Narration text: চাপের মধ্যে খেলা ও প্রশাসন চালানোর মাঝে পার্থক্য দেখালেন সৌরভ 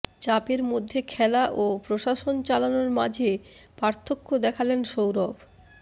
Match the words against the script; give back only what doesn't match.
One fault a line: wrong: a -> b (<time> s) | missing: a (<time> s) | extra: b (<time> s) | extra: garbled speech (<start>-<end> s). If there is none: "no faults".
no faults